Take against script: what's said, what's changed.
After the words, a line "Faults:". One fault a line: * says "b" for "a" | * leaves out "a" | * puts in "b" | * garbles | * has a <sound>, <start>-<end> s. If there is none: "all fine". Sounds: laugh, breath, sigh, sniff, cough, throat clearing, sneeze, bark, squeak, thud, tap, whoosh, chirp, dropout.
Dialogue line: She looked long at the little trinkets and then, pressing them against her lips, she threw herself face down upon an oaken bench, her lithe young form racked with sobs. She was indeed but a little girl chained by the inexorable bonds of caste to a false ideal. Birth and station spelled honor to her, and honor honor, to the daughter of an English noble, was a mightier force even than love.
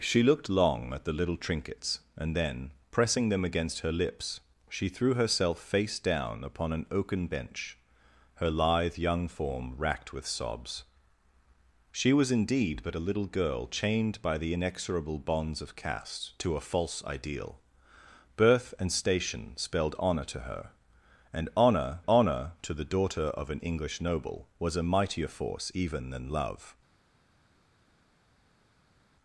She looked long at the little trinkets and then, pressing them against her lips, she threw herself face down upon an oaken bench, her lithe young form racked with sobs. She was indeed but a little girl chained by the inexorable bonds of caste to a false ideal. Birth and station spelled honor to her, and honor honor, to the daughter of an English noble, was a mightier force even than love.
Faults:
all fine